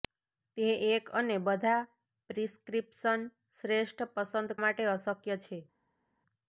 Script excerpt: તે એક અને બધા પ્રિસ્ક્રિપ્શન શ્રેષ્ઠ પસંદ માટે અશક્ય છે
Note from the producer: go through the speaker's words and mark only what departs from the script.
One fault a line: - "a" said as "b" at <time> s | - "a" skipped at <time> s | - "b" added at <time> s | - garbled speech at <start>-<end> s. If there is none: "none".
none